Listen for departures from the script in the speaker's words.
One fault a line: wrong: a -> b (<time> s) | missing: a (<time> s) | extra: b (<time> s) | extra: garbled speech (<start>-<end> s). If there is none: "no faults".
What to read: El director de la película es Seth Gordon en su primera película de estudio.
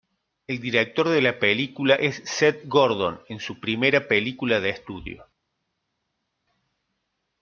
no faults